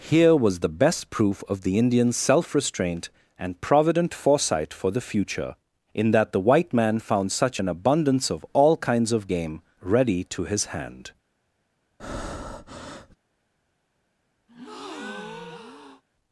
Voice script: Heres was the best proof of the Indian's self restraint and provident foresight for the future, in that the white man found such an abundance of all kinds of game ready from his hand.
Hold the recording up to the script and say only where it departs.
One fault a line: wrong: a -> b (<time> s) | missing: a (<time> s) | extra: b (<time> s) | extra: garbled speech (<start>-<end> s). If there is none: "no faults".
wrong: Heres -> Here (0.1 s)
wrong: from -> to (10.2 s)